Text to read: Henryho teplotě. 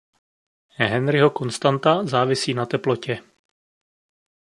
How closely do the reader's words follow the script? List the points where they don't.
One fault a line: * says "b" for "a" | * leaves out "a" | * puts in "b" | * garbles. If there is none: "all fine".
* puts in "konstanta závisí na"